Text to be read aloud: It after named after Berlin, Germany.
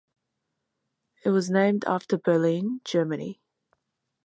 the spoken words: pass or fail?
fail